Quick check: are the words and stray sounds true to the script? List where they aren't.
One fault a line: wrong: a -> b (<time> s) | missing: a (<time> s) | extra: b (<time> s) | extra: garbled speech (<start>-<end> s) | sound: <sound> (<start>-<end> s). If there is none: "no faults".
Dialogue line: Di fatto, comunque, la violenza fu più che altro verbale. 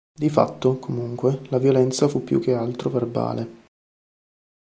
no faults